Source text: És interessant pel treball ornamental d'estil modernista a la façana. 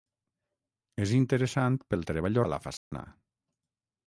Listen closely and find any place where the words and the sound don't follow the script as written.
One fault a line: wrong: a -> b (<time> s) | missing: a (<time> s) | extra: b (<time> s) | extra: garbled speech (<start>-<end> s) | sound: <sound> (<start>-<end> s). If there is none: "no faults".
missing: ornamental d'estil modernista (2.4 s)
sound: dropout (2.8-2.9 s)